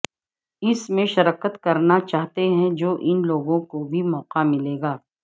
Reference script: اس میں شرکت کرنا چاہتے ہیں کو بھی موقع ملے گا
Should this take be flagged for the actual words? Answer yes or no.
yes